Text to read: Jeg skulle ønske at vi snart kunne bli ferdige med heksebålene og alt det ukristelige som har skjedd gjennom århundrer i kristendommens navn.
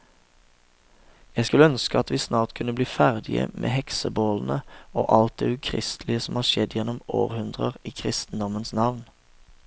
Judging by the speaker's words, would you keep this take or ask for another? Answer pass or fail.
pass